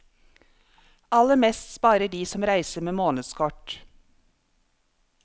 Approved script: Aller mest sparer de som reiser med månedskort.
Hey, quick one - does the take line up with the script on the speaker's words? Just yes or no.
yes